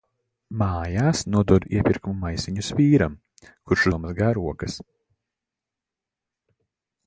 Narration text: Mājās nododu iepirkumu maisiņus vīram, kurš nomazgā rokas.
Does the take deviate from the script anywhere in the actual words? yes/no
no